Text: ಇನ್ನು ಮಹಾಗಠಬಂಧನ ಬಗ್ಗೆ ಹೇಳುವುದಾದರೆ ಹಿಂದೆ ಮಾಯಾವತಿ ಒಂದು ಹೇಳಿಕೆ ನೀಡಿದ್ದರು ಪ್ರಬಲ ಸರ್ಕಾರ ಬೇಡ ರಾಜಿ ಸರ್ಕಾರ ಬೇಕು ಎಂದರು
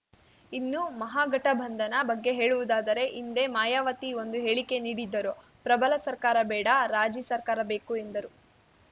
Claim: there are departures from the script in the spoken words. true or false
false